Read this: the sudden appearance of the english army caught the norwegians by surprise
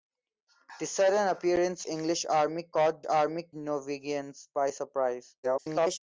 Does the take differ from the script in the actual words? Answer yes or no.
yes